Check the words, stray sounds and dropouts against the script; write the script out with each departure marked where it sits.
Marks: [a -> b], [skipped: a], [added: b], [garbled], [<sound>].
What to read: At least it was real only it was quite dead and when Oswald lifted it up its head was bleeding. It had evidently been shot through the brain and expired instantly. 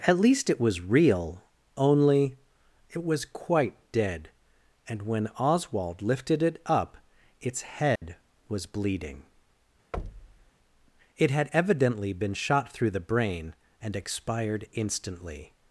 At least it was real only it was quite dead and when Oswald lifted it up its head [dropout] was bleeding. [thud] It had evidently been shot through the brain and expired instantly.